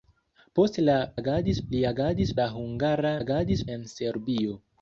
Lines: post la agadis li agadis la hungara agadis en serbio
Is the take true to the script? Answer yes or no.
yes